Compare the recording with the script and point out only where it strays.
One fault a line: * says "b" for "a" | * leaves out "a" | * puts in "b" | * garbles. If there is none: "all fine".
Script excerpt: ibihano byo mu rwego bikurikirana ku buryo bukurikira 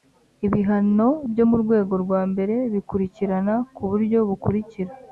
* puts in "rwa mbere"